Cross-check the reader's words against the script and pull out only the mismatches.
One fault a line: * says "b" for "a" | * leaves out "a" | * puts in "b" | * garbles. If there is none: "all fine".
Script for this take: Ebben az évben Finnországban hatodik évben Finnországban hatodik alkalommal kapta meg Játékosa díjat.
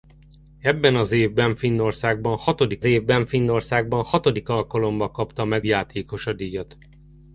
all fine